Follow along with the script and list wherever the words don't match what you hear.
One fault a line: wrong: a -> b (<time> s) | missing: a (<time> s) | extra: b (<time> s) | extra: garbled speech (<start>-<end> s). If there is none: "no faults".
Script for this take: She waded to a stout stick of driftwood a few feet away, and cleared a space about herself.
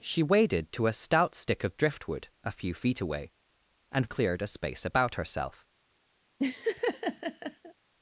no faults